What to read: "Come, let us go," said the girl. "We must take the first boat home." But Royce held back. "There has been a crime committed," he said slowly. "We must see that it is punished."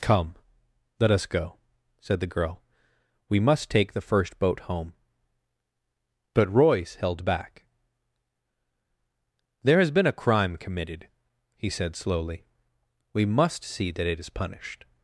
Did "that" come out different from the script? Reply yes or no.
no